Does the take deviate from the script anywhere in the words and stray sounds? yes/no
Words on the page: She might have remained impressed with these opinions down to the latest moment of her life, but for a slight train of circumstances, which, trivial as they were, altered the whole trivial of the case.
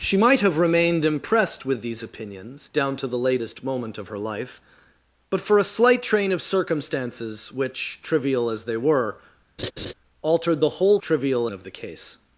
yes